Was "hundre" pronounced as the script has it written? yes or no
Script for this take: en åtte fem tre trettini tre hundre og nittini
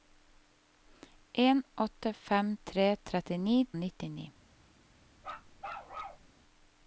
no